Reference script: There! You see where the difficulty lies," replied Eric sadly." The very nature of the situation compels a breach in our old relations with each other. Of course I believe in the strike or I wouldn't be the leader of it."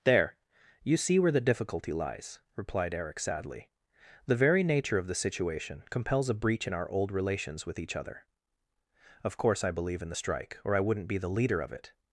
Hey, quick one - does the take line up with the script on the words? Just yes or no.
yes